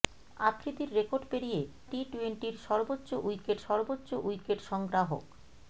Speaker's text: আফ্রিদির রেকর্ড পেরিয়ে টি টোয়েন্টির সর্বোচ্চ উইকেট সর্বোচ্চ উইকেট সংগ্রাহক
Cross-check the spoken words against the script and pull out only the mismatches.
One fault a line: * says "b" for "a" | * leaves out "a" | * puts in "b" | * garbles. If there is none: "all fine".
all fine